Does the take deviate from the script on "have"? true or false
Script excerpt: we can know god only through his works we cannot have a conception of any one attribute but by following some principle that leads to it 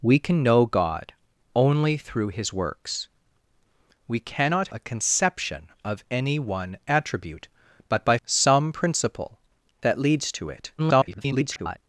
true